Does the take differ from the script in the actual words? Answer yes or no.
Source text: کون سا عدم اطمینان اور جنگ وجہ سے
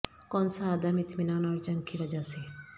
yes